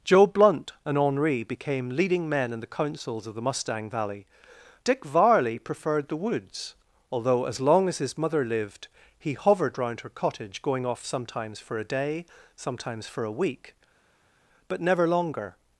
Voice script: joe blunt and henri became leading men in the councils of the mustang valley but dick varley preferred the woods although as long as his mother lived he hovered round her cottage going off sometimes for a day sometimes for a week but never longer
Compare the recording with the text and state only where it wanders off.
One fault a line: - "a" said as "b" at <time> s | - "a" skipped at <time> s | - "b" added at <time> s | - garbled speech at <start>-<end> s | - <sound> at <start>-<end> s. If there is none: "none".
- "but" skipped at 4.2 s